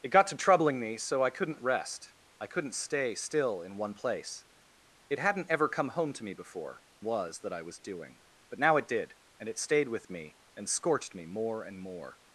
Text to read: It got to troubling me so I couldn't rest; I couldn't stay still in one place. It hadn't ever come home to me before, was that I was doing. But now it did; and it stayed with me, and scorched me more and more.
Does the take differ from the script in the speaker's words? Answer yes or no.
no